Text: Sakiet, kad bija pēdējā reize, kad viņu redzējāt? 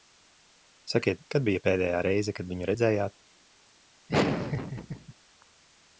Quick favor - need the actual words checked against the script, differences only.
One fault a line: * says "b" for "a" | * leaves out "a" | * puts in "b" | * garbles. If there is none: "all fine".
all fine